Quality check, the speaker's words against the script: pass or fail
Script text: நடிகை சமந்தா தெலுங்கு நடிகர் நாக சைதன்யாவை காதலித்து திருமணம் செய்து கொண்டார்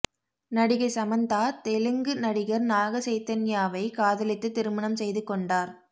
pass